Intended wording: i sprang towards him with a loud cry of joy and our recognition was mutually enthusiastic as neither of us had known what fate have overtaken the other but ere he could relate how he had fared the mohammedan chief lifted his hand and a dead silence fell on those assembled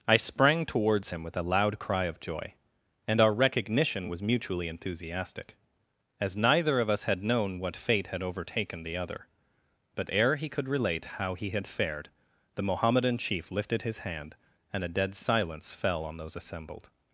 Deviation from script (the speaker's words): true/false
true